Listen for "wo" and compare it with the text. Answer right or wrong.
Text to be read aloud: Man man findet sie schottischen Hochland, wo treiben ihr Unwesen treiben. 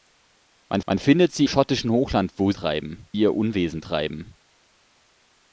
right